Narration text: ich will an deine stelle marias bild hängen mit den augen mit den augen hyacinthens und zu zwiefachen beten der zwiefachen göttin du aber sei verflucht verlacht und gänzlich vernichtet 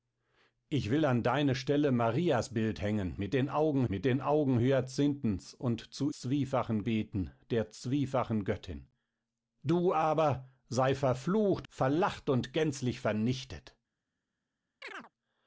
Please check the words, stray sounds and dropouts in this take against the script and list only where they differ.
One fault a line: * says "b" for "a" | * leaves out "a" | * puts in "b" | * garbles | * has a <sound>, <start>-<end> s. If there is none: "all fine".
* has a chirp, 14.8-15.1 s